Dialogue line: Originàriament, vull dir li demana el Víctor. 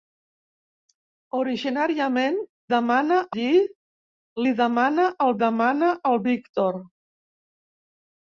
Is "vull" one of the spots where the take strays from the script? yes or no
yes